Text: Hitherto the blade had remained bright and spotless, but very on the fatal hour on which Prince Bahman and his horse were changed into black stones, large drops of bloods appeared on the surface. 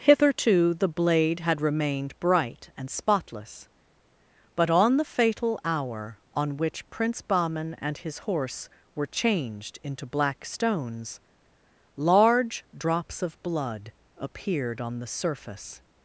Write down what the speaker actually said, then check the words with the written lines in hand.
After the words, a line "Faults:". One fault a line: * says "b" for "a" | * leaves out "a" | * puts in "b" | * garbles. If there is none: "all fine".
Hitherto the blade had remained bright and spotless, but on the fatal hour on which Prince Bahman and his horse were changed into black stones, large drops of blood appeared on the surface.
Faults:
* leaves out "very"
* says "blood" for "bloods"